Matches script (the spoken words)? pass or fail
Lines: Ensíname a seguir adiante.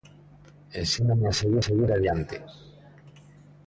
fail